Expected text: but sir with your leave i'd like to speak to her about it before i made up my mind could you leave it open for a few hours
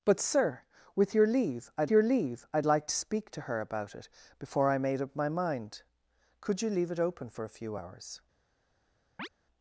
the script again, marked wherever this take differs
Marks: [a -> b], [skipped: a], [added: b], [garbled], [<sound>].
but sir with your leave i'd [added: your leave i'd] like to speak to her about it before i made up my mind could you leave it open for a few hours [chirp]